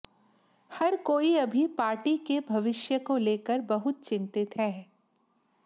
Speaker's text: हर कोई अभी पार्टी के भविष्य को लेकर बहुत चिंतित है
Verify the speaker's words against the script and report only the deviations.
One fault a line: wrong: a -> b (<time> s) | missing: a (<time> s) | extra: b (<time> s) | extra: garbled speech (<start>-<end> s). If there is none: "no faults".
no faults